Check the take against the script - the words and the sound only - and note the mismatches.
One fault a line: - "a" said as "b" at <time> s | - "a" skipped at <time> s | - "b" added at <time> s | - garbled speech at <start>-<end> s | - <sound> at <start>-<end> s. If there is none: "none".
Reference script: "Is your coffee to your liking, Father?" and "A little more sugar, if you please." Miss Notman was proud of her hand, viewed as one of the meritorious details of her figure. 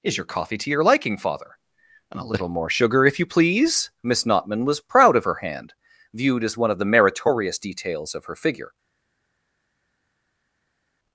none